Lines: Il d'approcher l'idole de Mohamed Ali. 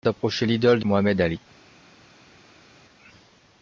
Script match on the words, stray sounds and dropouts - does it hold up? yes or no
yes